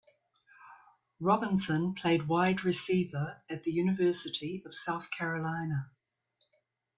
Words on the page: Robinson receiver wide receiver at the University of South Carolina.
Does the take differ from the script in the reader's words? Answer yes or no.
yes